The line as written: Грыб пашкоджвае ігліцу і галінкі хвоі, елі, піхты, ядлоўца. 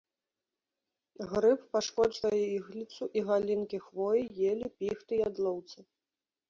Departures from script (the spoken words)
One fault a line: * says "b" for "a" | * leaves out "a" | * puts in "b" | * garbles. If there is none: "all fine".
all fine